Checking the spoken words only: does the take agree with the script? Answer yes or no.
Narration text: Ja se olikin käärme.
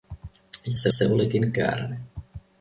no